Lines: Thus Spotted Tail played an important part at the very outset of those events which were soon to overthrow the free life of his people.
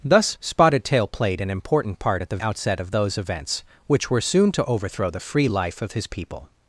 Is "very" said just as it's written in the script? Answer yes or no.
no